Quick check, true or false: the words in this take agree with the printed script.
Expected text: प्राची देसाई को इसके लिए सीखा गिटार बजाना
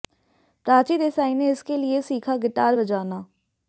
false